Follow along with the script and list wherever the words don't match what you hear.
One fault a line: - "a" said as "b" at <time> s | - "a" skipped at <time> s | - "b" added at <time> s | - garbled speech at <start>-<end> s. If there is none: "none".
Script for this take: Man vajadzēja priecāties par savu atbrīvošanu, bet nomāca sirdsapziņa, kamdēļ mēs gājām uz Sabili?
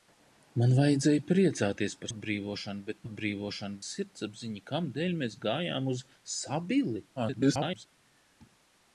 - "savu" skipped at 2.1 s
- "nomāca" said as "atbrīvošanu" at 3.0 s
- garbled speech at 7.2-7.9 s